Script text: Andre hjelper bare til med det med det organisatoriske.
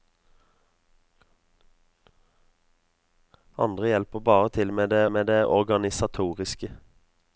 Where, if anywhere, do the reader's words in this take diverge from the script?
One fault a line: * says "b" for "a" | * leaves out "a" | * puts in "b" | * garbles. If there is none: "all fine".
all fine